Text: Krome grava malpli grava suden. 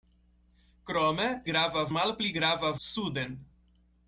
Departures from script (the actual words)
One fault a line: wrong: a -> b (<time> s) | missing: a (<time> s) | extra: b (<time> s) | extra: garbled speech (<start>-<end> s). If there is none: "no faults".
no faults